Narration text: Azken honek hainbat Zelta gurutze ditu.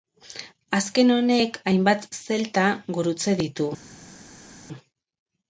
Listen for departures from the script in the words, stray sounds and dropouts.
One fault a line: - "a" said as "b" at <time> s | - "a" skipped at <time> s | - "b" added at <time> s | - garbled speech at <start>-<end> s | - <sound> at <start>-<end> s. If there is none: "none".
none